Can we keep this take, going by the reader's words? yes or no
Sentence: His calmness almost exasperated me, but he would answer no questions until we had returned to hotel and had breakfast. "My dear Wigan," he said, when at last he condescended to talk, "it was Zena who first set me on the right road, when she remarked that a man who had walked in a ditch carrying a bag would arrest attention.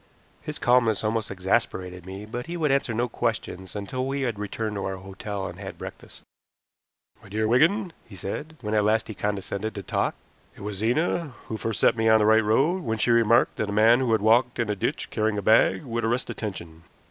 no